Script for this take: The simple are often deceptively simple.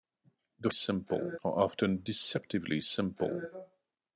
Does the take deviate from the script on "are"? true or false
false